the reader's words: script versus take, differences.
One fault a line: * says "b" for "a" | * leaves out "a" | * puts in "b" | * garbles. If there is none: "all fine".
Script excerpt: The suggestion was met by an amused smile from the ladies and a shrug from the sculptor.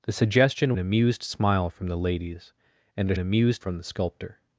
* leaves out "was met by"
* says "amused" for "shrug"